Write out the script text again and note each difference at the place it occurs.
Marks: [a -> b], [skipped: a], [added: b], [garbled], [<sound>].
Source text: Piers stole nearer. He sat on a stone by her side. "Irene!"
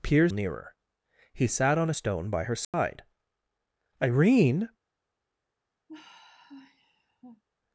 Piers [skipped: stole] nearer. He sat on a stone by her side. [dropout] "Irene!" [sigh]